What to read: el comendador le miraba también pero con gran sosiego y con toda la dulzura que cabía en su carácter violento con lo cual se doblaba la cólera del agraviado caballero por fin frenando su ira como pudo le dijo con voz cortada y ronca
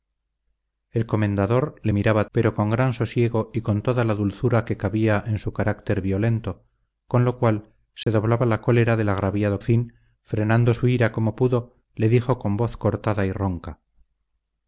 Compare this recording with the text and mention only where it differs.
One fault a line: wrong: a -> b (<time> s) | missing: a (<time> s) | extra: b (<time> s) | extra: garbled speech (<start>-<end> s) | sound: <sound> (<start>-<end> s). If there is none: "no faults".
missing: también (2.3 s)
sound: dropout (8.0-8.1 s)
missing: caballero por (9.6 s)